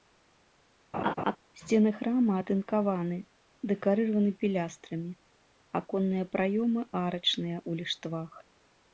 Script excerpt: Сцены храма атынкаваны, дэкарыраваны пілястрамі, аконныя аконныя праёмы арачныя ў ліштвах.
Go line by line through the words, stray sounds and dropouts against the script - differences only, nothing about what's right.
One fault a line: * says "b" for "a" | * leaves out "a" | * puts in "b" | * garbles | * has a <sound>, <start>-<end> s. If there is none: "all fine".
* has a laugh, 0.9-1.4 s
* leaves out "аконныя"